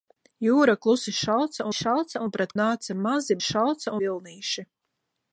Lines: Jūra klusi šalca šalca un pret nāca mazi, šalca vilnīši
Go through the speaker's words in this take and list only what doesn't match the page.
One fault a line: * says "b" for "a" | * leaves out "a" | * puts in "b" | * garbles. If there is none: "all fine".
all fine